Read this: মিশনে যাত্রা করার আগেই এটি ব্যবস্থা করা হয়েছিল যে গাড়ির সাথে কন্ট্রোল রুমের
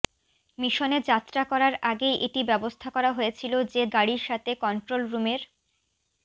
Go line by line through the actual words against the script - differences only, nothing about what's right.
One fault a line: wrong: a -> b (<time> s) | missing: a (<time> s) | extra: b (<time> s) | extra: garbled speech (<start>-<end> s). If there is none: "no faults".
no faults